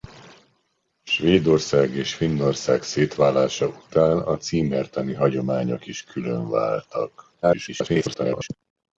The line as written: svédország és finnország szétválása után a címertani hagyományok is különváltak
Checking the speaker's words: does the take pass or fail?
fail